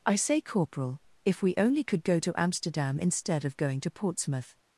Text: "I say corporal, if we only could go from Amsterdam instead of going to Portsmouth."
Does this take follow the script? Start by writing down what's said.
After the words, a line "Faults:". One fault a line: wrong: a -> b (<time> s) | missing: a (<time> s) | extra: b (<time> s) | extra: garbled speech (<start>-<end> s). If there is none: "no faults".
"I say corporal, if we only could go to Amsterdam instead of going to Portsmouth."
Faults:
wrong: from -> to (2.2 s)